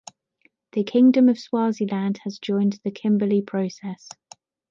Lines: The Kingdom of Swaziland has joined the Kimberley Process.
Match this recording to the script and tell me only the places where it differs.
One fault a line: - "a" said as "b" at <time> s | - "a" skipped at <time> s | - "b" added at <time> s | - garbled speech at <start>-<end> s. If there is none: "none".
none